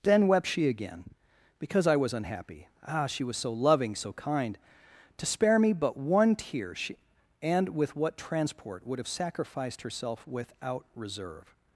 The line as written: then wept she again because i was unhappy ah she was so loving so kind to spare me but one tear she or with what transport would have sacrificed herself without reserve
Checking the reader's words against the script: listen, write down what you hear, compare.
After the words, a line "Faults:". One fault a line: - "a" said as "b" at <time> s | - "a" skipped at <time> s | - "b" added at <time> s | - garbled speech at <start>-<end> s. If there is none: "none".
then wept she again because i was unhappy ah she was so loving so kind to spare me but one tear she and with what transport would have sacrificed herself without reserve
Faults:
- "or" said as "and" at 7.4 s